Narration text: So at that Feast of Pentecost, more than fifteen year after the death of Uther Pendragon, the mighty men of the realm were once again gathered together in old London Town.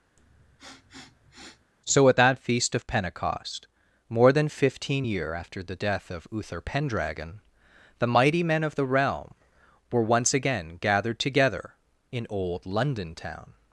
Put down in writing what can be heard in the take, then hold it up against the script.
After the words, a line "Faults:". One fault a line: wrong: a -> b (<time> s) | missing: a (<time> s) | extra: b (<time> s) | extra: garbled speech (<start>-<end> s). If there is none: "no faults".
So at that Feast of Pentecost, more than fifteen year after the death of Uther Pendragon, the mighty men of the realm were once again gathered together in old London Town.
Faults:
no faults